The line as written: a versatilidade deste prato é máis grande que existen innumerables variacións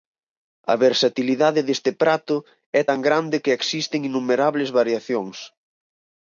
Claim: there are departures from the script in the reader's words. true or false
true